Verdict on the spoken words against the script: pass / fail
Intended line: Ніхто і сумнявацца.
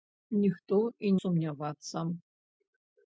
pass